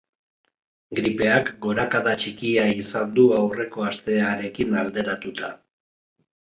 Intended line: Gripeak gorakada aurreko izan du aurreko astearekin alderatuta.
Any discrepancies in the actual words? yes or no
yes